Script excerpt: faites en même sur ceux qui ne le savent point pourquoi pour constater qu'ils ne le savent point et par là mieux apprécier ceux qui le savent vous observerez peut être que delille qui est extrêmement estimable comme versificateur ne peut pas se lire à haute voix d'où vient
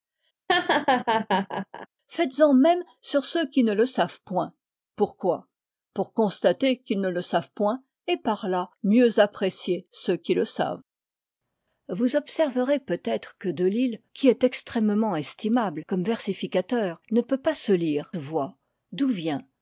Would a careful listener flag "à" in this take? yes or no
yes